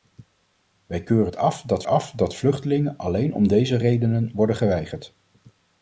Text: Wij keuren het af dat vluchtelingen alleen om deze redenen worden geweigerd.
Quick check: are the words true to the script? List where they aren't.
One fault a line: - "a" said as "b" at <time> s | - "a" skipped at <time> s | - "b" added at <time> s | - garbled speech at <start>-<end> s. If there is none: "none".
- "af dat" added at 1.8 s